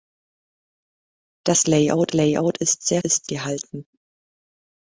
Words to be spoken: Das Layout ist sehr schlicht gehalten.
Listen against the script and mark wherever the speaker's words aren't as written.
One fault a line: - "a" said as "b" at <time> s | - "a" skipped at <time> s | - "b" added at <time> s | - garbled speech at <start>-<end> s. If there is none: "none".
- "Layout" added at 2.1 s
- "schlicht" said as "ist" at 3.0 s